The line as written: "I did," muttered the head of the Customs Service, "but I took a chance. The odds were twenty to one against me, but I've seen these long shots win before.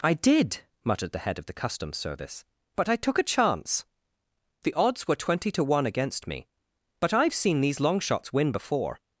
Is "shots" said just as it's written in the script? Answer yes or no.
yes